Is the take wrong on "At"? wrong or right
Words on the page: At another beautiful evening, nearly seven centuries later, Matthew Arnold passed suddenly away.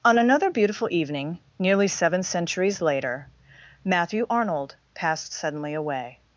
wrong